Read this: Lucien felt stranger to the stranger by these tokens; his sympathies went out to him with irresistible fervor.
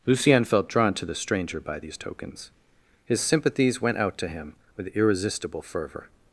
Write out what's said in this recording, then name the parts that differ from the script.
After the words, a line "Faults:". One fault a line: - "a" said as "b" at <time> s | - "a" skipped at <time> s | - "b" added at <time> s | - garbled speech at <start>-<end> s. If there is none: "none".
Lucien felt drawn to the stranger by these tokens; his sympathies went out to him with irresistible fervor.
Faults:
- "stranger" said as "drawn" at 0.7 s